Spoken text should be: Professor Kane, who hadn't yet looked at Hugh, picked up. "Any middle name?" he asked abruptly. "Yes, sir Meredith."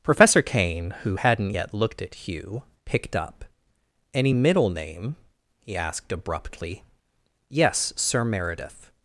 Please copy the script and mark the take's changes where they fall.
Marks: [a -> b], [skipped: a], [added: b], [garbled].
Professor Kane, who hadn't yet looked at Hugh, picked up. "Any middle name?" he asked abruptly. "Yes, sir Meredith."